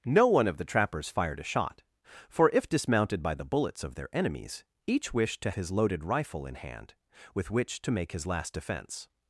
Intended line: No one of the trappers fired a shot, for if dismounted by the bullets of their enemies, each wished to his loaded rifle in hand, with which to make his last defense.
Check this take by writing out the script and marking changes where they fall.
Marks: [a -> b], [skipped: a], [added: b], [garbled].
No one of the trappers fired a shot, for if dismounted by the bullets of their enemies, each wished to his loaded rifle in hand, with which to make his last defense.